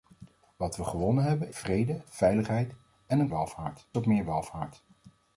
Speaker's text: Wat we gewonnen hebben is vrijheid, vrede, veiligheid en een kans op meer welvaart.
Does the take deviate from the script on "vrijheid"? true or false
true